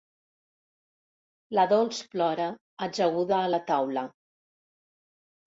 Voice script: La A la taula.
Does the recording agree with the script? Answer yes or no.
no